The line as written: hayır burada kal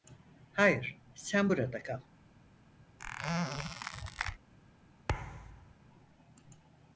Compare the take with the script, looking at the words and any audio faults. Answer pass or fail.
fail